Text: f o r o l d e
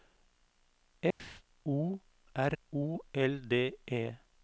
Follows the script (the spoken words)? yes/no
yes